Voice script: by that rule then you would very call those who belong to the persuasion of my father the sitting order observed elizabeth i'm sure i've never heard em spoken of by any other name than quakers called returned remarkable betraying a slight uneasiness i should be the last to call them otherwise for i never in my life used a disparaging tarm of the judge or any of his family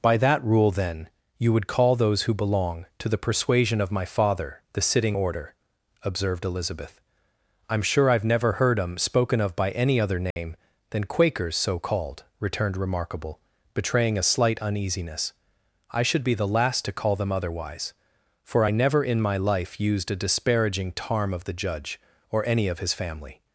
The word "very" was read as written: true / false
false